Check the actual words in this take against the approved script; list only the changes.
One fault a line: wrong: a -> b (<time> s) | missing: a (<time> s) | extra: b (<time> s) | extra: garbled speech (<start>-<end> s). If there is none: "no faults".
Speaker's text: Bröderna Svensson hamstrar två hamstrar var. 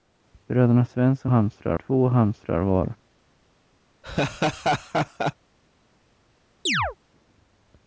no faults